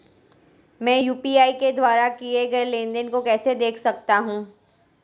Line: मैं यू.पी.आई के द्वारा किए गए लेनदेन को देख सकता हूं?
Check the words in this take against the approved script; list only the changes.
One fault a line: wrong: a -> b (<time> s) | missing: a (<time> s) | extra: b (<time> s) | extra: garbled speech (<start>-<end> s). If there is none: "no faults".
extra: कैसे (3.2 s)